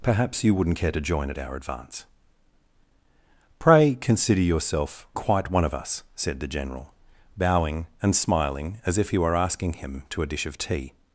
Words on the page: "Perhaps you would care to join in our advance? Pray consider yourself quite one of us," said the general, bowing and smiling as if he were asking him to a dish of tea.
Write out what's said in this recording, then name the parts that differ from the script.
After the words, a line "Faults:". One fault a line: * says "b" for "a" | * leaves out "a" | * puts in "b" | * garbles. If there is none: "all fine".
"Perhaps you wouldn't care to join at our advance? Pray consider yourself quite one of us," said the general, bowing and smiling as if he were asking him to a dish of tea.
Faults:
* says "wouldn't" for "would"
* says "at" for "in"